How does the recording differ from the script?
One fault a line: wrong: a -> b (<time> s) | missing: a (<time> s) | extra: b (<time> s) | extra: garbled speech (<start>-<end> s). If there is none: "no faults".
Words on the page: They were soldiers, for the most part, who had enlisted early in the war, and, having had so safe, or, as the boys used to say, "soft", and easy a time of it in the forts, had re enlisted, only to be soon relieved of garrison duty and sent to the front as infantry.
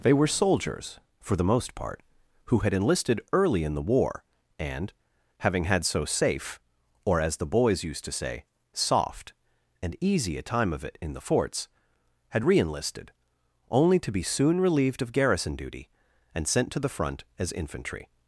no faults